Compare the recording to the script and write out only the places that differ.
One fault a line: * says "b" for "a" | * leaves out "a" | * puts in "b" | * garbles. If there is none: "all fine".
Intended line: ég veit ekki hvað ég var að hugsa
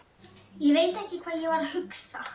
all fine